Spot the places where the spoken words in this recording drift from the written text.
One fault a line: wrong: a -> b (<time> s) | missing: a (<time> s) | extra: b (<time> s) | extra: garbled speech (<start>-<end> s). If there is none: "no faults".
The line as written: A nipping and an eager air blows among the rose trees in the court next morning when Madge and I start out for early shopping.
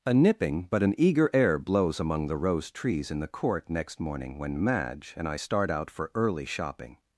wrong: and -> but (0.7 s)